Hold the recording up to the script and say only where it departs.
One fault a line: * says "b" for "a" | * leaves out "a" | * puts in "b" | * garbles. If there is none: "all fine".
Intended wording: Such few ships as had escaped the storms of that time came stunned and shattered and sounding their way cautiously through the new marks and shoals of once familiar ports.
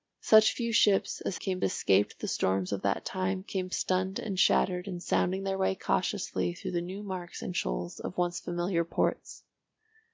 * says "came" for "had"